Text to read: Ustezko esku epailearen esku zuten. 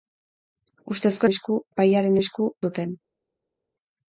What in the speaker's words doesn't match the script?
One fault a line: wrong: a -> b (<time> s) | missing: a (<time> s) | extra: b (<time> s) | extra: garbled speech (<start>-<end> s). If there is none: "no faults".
no faults